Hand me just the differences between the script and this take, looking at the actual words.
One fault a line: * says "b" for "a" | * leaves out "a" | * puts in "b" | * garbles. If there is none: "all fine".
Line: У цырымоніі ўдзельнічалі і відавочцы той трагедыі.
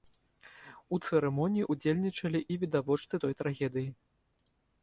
all fine